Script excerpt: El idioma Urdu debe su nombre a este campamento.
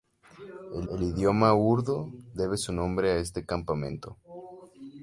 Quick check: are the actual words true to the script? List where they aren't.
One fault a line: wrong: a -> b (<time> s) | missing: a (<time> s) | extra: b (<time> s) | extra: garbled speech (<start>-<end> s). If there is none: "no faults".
extra: el (0.9 s)